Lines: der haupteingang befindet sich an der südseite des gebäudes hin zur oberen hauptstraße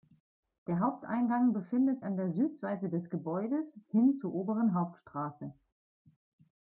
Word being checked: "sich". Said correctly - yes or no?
no